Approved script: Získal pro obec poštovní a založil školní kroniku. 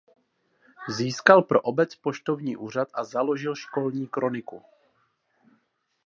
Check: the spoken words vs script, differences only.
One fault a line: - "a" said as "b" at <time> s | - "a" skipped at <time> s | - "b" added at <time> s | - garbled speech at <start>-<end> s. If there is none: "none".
- "úřad" added at 2.6 s